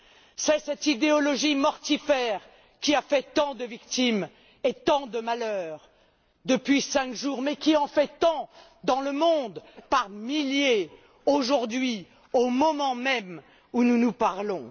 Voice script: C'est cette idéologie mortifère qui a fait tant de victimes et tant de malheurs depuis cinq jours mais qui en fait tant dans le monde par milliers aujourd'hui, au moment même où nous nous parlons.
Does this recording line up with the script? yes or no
yes